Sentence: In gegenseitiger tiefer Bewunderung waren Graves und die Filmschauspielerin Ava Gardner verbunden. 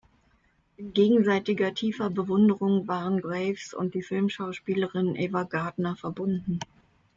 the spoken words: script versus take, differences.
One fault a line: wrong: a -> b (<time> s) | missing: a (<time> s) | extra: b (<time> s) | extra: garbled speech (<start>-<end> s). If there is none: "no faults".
no faults